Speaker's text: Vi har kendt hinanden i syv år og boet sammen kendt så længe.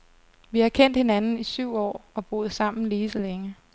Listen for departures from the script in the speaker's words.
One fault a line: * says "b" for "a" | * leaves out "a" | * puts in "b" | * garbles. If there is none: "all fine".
* says "lige" for "kendt"